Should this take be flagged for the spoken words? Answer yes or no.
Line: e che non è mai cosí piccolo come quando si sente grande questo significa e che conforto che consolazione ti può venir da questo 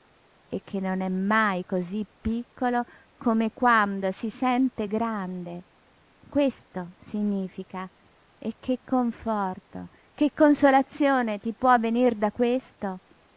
no